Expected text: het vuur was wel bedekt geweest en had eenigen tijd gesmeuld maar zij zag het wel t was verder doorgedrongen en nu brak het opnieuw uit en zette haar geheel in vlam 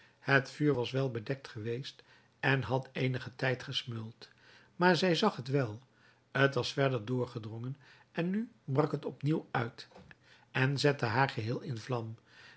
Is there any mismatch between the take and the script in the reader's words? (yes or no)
no